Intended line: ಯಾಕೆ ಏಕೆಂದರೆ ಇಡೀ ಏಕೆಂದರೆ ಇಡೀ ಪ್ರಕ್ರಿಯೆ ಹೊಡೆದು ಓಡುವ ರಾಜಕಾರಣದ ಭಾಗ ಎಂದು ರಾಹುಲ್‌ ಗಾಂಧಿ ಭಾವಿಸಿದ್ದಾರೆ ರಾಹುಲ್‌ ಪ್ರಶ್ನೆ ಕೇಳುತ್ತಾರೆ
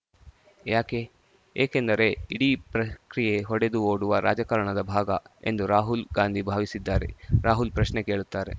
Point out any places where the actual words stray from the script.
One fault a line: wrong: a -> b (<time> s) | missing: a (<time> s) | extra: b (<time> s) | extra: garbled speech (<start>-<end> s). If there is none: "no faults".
missing: ಏಕೆಂದರೆ ಇಡೀ (2.5 s)